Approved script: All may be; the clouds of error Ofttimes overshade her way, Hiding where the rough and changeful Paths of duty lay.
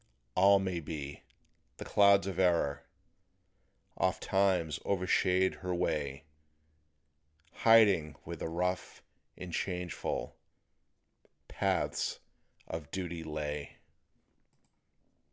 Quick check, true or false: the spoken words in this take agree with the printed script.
true